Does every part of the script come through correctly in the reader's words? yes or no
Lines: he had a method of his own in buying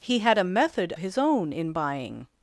no